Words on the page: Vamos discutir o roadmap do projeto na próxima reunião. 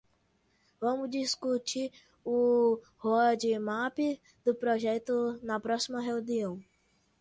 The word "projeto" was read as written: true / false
true